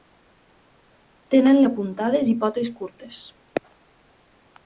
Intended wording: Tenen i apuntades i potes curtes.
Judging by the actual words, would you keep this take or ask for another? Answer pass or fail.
pass